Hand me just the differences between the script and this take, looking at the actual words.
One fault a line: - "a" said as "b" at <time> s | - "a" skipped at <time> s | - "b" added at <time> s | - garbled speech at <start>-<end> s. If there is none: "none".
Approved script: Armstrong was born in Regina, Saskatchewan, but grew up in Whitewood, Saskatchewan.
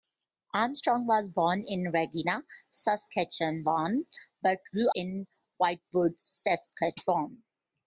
- "up" skipped at 4.9 s